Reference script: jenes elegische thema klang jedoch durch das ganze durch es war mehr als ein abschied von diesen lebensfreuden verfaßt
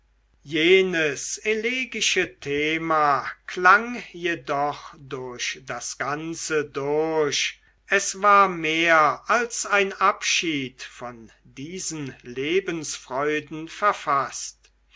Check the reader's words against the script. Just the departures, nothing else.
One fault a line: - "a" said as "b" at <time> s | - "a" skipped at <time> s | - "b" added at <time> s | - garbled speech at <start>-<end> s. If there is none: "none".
none